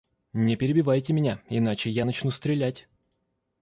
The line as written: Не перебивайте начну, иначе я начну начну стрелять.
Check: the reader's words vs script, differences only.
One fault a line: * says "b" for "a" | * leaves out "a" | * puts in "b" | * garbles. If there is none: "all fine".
* says "меня" for "начну"
* leaves out "начну"